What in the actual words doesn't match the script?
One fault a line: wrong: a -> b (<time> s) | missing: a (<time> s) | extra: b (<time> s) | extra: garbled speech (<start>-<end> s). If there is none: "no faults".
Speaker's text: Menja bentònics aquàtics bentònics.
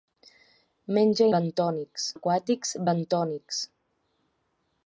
no faults